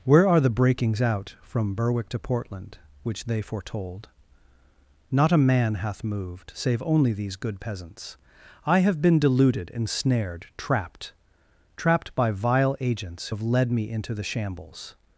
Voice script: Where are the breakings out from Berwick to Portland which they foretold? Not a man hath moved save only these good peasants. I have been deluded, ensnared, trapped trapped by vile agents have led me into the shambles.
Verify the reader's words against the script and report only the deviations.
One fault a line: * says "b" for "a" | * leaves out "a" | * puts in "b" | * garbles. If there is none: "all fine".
all fine